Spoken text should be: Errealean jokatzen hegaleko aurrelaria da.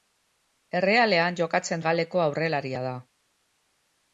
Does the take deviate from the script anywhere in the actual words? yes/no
no